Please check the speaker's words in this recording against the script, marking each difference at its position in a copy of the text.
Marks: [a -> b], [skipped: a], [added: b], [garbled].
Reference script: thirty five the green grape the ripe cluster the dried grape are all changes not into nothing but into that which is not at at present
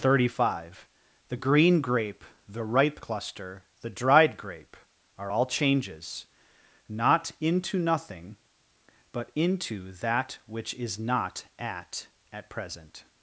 thirty five the green grape the ripe cluster the dried grape are all changes not into nothing but into that which is not at at present